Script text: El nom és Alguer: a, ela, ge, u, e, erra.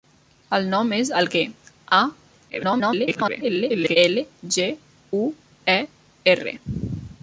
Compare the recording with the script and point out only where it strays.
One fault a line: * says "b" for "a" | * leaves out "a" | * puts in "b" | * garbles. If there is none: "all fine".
* garbles